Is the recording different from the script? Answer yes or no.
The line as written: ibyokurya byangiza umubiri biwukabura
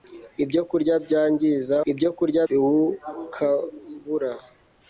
yes